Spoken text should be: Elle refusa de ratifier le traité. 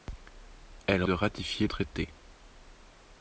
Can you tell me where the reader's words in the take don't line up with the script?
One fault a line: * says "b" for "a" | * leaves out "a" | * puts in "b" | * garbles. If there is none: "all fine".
* leaves out "refusa"
* leaves out "le"